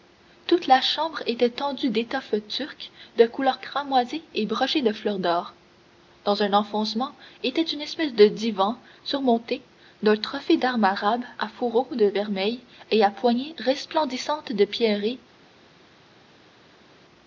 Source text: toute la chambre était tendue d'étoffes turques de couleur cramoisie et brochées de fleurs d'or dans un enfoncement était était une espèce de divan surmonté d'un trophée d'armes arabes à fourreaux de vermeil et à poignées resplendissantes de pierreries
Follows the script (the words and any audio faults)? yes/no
no